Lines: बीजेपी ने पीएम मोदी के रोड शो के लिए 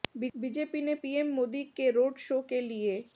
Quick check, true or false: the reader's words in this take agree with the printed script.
true